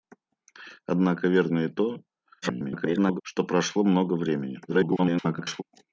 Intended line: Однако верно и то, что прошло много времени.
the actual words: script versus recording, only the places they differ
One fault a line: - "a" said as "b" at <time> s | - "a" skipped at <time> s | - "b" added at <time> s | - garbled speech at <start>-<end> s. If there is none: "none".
- garbled speech at 2.4-3.2 s
- garbled speech at 4.7-5.6 s